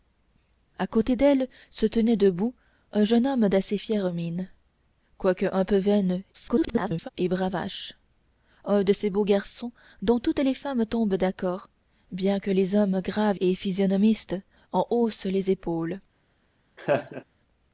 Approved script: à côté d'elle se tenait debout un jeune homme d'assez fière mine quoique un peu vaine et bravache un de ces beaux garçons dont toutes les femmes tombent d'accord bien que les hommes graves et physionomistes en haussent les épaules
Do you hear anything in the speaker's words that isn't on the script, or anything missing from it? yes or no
yes